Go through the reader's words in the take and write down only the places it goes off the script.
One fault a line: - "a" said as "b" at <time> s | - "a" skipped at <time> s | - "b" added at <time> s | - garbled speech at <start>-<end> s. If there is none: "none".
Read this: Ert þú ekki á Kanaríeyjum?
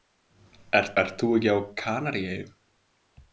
- "ert" added at 1.0 s